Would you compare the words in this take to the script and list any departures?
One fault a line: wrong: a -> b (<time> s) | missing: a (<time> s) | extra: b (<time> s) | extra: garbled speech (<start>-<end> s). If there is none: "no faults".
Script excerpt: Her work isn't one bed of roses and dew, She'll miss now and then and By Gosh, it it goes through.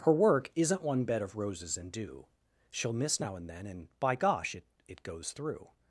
no faults